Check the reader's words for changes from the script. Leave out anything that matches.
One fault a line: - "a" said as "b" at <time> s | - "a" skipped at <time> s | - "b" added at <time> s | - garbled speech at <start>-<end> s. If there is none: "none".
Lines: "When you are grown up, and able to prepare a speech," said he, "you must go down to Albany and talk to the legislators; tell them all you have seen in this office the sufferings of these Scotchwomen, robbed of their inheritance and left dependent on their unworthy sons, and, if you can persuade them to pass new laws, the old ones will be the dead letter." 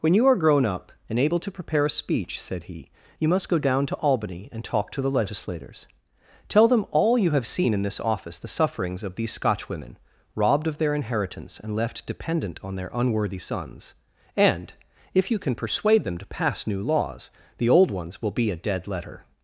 - "the" said as "a" at 18.5 s